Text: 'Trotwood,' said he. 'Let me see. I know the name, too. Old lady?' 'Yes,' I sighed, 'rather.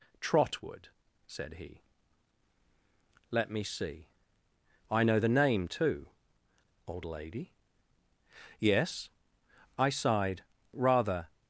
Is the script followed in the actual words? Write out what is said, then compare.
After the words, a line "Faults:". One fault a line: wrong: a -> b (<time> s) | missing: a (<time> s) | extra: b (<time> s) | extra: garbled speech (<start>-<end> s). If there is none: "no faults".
'Trotwood,' said he. 'Let me see. I know the name, too. Old lady?' 'Yes,' I sighed, 'rather.
Faults:
no faults